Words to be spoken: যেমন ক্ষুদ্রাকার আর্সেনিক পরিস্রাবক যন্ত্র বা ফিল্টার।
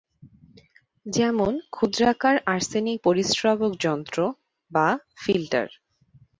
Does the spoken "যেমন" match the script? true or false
true